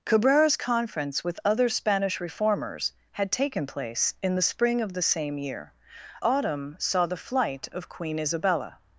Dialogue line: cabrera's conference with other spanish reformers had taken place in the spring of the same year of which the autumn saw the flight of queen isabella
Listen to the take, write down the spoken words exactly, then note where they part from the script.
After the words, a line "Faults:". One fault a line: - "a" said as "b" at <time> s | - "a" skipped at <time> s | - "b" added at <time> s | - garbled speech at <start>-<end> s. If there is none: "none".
cabrera's conference with other spanish reformers had taken place in the spring of the same year autumn saw the flight of queen isabella
Faults:
- "of which the" skipped at 5.7 s